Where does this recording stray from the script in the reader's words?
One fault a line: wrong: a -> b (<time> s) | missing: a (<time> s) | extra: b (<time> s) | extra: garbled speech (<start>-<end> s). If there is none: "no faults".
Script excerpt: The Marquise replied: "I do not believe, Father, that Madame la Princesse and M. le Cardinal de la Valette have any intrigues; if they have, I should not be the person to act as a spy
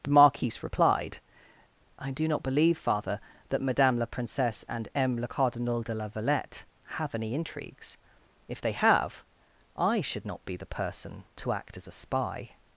no faults